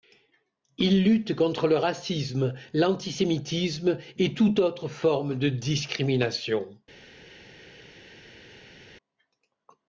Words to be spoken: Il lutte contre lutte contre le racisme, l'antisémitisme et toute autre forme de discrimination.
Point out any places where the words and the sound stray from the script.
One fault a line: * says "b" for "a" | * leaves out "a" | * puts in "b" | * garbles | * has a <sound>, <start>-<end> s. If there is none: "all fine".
* leaves out "lutte contre"